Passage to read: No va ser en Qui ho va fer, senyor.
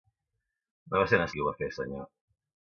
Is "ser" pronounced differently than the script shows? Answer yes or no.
no